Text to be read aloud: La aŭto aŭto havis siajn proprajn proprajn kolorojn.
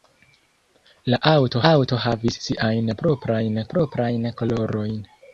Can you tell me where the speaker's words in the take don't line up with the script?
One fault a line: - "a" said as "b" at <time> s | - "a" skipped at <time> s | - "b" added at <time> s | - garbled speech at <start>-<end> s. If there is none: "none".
none